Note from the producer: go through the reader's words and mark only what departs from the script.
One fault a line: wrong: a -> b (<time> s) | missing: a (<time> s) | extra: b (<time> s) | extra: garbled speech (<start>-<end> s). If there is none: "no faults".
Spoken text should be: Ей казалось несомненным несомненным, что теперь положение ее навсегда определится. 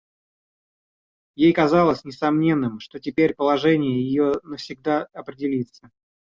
missing: несомненным (2.8 s)